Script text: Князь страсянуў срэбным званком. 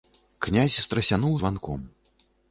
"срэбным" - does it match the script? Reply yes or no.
no